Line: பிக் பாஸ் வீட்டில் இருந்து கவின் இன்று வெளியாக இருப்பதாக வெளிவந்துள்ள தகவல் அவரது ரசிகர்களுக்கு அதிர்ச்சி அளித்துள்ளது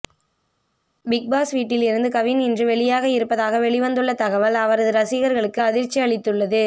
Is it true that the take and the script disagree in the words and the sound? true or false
false